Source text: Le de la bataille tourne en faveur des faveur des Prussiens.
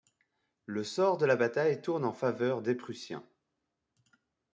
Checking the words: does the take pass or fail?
fail